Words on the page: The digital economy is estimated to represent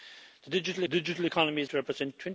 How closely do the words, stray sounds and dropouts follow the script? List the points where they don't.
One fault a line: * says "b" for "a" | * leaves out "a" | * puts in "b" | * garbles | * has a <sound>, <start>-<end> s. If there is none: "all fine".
* puts in "digital"
* leaves out "estimated"